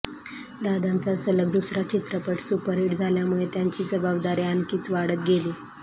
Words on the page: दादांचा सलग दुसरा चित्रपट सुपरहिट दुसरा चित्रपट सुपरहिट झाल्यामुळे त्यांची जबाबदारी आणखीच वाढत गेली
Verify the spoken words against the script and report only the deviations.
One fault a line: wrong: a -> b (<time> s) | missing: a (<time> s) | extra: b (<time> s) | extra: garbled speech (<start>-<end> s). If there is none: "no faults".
missing: दुसरा चित्रपट सुपरहिट (3.0 s)